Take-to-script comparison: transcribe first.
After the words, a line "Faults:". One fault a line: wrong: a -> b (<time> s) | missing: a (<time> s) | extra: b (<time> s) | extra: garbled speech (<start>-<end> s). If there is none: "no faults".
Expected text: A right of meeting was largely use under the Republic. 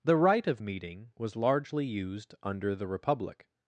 The right of meeting was largely used under the Republic.
Faults:
wrong: A -> The (0.0 s)
wrong: use -> used (1.8 s)